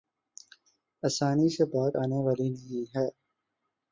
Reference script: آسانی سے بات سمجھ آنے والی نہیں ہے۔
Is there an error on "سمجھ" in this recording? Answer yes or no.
yes